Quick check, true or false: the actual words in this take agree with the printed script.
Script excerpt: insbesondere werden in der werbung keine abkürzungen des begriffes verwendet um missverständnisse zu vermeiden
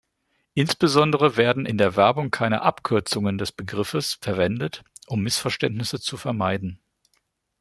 true